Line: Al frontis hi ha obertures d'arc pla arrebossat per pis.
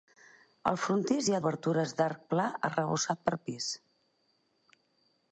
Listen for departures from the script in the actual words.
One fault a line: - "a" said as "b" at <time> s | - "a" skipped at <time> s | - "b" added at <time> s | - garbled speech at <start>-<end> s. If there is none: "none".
none